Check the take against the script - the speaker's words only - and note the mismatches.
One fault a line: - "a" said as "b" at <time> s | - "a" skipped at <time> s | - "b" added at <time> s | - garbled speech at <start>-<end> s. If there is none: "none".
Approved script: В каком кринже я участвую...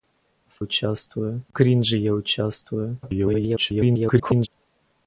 - "каком" said as "участвую" at 0.6 s
- garbled speech at 3.0-4.5 s